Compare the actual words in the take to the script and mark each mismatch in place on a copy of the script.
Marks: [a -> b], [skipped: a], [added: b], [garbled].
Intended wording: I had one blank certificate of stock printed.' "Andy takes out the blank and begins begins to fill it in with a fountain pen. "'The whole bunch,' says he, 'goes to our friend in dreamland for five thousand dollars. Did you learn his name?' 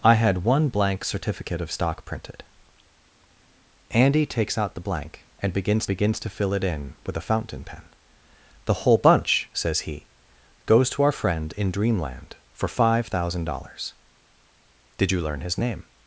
I had one blank certificate of stock printed.' "Andy takes out the blank and begins begins to fill it in with a fountain pen. "'The whole bunch,' says he, 'goes to our friend in dreamland for five thousand dollars. Did you learn his name?'